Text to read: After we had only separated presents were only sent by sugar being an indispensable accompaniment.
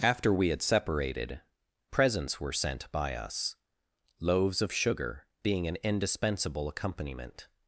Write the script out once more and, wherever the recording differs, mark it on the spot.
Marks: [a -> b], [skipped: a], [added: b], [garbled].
After we had [skipped: only] separated presents were [skipped: only] sent by [added: us loaves of] sugar being an indispensable accompaniment.